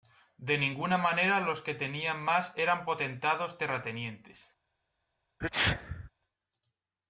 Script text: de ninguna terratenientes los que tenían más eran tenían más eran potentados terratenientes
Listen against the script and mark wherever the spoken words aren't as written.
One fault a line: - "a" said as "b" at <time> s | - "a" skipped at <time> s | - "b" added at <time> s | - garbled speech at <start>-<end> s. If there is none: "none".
- "terratenientes" said as "manera" at 1.0 s
- "tenían más eran" skipped at 2.9 s